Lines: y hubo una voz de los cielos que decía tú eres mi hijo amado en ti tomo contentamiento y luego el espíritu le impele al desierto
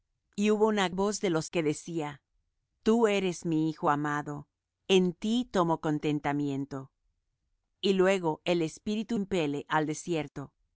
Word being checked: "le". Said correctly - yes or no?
no